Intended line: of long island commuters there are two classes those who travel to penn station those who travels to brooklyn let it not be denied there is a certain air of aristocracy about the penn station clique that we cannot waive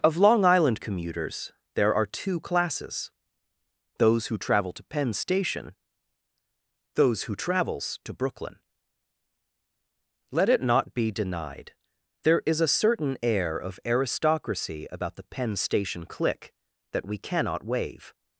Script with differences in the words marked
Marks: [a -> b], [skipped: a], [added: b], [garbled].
of long island commuters there are two classes those who travel to penn station those who travels to brooklyn let it not be denied there is a certain air of aristocracy about the penn station clique that we cannot waive